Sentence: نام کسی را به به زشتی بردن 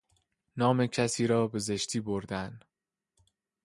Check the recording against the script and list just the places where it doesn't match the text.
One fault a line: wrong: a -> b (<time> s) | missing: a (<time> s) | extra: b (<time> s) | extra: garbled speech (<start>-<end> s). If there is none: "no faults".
missing: به (1.6 s)